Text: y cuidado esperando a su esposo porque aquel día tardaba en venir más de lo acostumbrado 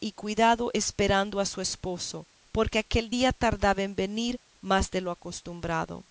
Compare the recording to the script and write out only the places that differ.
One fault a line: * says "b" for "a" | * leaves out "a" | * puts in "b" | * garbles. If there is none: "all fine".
all fine